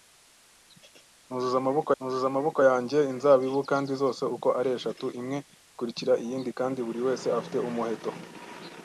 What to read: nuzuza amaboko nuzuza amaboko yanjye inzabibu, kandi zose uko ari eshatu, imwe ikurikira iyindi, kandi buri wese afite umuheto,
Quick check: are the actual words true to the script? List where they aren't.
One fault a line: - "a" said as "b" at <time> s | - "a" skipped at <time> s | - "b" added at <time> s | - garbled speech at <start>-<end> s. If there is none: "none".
none